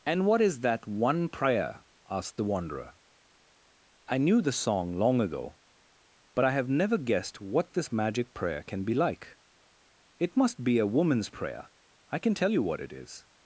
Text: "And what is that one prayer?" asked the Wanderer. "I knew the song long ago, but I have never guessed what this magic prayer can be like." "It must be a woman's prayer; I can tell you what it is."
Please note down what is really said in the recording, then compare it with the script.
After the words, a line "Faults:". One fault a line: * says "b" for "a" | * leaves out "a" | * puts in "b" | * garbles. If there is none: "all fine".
"And what is that one prayer?" asked the Wanderer. "I knew the song long ago, but I have never guessed what this magic prayer can be like." "It must be a woman's prayer; I can tell you what it is."
Faults:
all fine